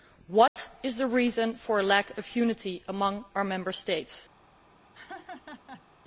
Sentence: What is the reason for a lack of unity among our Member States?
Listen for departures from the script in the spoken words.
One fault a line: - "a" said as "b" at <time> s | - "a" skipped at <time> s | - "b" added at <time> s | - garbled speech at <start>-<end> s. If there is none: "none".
none